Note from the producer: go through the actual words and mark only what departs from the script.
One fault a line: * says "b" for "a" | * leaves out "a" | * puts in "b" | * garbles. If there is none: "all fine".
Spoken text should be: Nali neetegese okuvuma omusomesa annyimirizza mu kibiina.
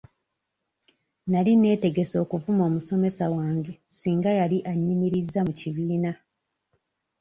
* puts in "wange singa yali"